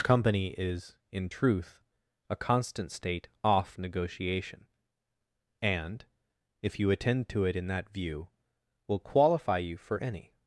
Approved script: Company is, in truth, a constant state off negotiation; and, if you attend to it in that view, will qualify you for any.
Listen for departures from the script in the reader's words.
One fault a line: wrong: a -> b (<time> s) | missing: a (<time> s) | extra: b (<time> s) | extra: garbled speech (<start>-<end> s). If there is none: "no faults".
no faults